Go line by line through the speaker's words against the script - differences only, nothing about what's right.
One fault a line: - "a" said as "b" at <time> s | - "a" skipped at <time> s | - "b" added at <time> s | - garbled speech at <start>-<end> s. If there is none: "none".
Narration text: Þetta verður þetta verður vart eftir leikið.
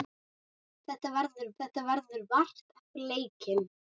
none